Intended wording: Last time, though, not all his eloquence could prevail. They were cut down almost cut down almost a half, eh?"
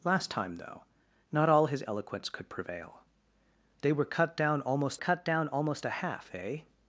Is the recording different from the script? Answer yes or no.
no